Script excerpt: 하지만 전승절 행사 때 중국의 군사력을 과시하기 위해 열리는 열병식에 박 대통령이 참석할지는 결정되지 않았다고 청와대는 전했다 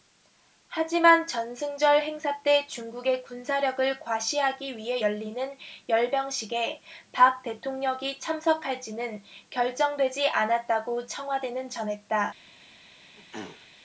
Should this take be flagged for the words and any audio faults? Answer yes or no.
yes